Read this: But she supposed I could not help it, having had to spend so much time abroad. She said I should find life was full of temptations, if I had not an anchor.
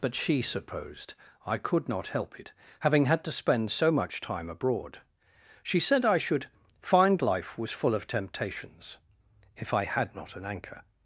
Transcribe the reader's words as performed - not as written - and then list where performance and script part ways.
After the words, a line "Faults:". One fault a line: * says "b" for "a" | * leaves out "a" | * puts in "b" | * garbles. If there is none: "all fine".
But she supposed I could not help it, having had to spend so much time abroad. She said I should find life was full of temptations, if I had not an anchor.
Faults:
all fine